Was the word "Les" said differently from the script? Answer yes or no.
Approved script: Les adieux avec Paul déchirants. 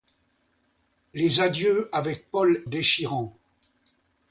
no